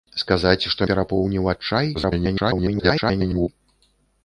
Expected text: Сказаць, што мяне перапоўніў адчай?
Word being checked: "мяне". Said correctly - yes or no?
no